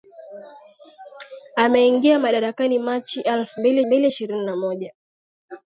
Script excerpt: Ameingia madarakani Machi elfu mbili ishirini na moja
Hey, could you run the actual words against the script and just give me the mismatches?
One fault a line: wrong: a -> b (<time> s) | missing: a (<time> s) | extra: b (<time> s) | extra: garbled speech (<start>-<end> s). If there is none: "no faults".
extra: mbili (3.9 s)